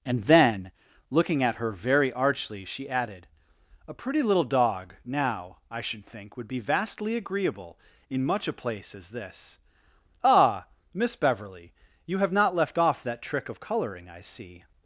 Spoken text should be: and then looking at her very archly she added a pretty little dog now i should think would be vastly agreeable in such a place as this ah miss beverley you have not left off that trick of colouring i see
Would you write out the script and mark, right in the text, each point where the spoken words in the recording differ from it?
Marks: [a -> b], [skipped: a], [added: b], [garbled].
and then looking at her very archly she added a pretty little dog now i should think would be vastly agreeable in [such -> much] a place as this ah miss beverley you have not left off that trick of colouring i see